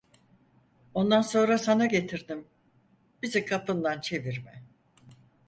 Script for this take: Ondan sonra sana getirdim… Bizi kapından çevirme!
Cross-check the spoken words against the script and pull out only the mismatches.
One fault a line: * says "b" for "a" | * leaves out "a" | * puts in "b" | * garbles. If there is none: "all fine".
all fine